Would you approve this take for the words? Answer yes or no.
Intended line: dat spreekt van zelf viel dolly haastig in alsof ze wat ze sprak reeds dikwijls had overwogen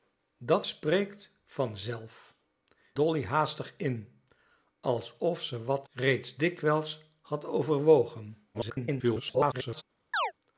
no